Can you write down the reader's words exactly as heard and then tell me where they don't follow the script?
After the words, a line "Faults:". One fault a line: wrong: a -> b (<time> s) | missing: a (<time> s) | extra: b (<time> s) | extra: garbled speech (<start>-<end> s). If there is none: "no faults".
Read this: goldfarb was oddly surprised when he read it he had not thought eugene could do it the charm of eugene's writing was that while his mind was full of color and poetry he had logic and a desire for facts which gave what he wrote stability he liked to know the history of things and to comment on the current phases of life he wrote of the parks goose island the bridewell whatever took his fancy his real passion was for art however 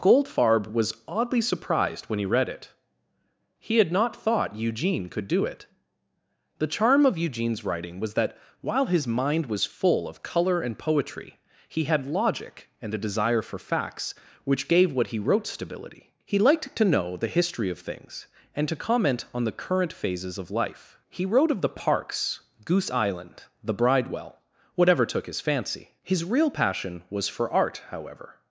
goldfarb was oddly surprised when he read it he had not thought eugene could do it the charm of eugene's writing was that while his mind was full of color and poetry he had logic and a desire for facts which gave what he wrote stability he liked to know the history of things and to comment on the current phases of life he wrote of the parks goose island the bridewell whatever took his fancy his real passion was for art however
Faults:
no faults